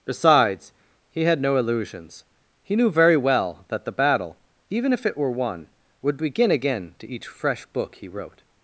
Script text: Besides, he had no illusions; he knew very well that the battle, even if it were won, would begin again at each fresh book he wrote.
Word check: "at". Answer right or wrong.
wrong